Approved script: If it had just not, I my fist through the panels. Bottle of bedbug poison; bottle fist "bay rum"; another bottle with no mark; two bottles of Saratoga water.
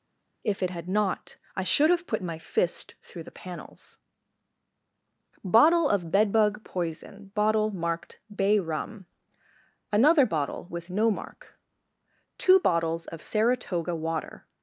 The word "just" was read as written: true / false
false